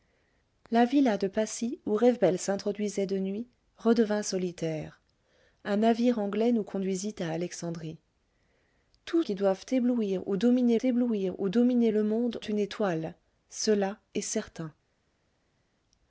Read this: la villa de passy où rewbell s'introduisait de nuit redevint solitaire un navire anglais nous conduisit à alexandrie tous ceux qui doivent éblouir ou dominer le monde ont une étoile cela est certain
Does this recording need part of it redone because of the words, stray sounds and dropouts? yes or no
yes